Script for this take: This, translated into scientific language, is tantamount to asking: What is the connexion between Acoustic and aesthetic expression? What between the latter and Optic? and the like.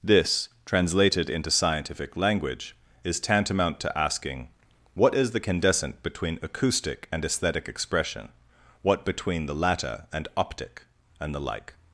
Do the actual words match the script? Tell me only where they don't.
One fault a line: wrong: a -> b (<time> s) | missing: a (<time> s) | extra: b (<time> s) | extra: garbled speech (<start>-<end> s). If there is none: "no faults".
wrong: connexion -> candescent (5.4 s)